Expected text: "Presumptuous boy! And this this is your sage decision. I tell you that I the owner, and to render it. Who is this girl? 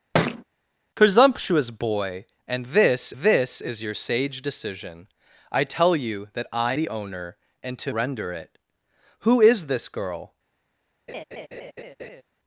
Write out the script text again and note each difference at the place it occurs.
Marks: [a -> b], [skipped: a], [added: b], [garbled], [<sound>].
[thud] "Presumptuous boy! And this this is your sage decision. I tell you that I the owner, and to render it. Who is this girl? [laugh]